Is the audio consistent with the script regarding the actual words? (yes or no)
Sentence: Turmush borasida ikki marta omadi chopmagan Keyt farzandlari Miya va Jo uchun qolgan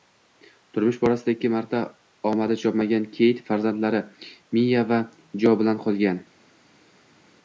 no